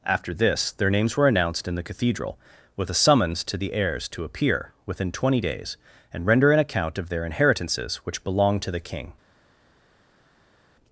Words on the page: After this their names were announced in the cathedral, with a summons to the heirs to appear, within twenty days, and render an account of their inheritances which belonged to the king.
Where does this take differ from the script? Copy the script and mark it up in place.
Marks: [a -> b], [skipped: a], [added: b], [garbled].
After this their names were announced in the cathedral, with a summons to the heirs to appear, within twenty days, and render an account of their inheritances which belonged to the king.